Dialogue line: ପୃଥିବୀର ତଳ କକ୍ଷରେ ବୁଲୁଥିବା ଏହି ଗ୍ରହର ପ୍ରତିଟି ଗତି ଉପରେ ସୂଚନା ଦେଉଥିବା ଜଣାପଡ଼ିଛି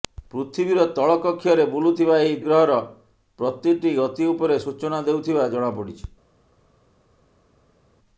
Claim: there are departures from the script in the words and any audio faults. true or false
false